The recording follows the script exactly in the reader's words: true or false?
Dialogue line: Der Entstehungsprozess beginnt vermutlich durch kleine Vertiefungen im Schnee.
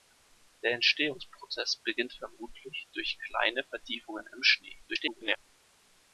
false